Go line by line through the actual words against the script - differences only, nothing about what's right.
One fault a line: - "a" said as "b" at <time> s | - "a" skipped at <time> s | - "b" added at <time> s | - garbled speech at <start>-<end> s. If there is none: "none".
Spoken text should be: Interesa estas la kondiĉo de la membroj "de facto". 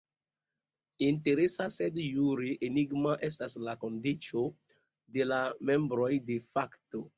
- "sed jure enigma" added at 1.8 s